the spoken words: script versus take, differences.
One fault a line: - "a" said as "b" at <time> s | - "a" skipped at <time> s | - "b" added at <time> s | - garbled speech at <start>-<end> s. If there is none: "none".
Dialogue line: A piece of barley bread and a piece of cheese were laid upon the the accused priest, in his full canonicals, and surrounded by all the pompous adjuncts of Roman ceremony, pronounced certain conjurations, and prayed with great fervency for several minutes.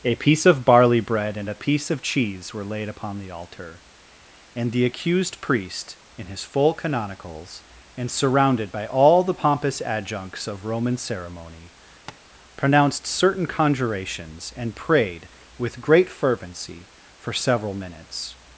- "altar and" added at 3.3 s